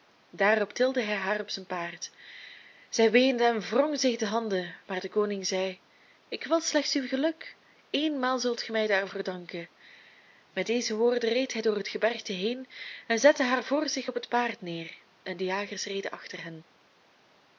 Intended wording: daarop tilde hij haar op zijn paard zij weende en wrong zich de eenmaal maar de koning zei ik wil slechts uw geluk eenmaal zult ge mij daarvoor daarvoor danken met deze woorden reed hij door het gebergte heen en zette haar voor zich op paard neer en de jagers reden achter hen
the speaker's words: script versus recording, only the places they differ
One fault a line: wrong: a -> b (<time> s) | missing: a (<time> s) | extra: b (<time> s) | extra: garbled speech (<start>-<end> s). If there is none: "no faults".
wrong: eenmaal -> handen (4.2 s)
missing: daarvoor (9.2 s)
extra: het (14.1 s)